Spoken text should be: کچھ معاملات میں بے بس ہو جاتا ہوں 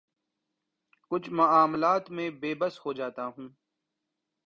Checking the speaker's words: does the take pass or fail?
pass